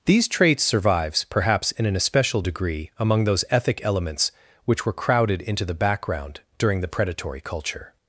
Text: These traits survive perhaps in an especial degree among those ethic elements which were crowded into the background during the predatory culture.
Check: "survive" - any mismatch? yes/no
yes